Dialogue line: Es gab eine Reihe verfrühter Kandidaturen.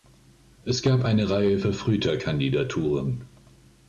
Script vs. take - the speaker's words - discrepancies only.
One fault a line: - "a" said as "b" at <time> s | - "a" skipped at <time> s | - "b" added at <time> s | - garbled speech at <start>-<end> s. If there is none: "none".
none